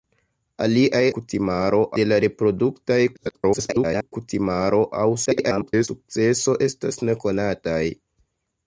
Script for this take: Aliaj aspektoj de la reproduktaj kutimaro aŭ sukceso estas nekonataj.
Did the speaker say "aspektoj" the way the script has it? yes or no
no